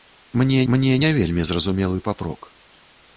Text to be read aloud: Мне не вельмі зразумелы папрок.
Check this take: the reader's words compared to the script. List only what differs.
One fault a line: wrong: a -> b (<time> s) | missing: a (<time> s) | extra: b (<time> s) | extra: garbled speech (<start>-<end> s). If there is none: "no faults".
extra: мне (0.7 s)